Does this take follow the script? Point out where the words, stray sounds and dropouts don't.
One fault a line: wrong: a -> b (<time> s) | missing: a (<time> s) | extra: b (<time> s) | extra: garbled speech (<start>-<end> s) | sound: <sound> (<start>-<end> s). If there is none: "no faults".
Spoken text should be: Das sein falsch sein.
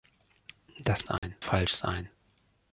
sound: dropout (1.2-1.2 s)